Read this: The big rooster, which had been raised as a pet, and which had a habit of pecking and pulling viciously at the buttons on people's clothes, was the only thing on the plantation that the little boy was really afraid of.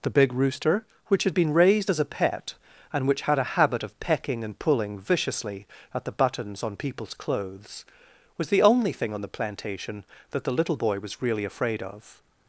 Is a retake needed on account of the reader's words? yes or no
no